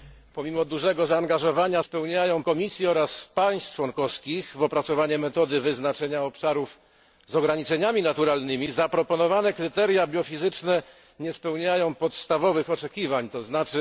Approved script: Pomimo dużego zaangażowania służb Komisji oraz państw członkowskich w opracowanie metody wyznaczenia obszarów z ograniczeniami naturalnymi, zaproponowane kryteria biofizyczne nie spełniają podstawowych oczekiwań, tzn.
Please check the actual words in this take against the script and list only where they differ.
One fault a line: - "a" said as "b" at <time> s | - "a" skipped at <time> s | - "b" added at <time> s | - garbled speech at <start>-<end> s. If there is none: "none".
- "służb" said as "spełniają" at 1.8 s